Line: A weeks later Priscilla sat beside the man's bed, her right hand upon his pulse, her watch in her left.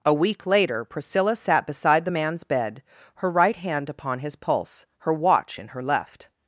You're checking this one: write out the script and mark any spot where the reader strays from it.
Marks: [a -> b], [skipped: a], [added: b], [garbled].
A [weeks -> week] later Priscilla sat beside the man's bed, her right hand upon his pulse, her watch in her left.